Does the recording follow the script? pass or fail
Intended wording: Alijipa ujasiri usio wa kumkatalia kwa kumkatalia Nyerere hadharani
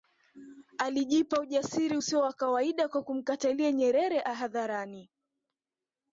fail